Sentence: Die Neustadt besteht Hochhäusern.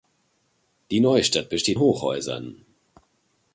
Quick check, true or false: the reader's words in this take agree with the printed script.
true